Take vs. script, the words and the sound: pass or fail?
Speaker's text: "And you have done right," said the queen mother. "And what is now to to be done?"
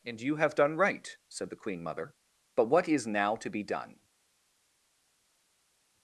fail